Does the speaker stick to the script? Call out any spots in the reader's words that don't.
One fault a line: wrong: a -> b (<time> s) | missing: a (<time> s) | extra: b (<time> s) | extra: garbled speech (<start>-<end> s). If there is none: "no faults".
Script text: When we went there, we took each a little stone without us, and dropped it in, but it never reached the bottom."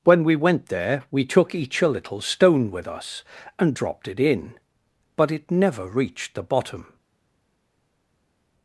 wrong: without -> with (2.7 s)